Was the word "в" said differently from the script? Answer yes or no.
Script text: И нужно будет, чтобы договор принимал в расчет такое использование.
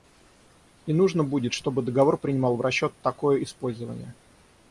no